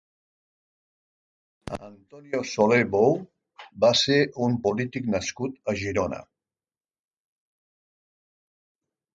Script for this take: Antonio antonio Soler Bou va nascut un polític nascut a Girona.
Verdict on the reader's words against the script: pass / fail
fail